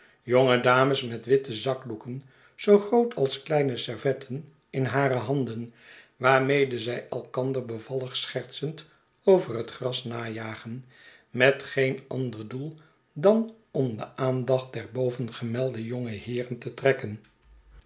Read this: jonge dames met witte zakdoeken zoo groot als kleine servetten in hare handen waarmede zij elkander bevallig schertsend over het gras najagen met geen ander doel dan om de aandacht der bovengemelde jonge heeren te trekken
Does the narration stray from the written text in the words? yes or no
no